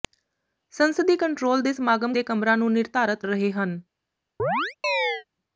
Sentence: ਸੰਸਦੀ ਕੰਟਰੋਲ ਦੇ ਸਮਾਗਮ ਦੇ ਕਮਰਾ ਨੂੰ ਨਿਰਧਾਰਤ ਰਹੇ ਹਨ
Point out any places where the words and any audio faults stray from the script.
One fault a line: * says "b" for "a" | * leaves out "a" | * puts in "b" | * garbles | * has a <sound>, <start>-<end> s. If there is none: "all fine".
* has a chirp, 4.4-5.2 s